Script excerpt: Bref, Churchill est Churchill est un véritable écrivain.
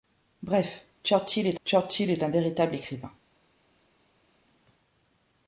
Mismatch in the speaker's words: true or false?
false